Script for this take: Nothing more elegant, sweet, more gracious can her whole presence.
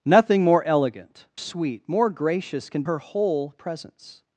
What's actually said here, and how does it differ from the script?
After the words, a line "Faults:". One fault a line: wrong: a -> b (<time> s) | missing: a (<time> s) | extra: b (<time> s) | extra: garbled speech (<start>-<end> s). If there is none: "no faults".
Nothing more elegant, sweet, more gracious can her whole presence.
Faults:
no faults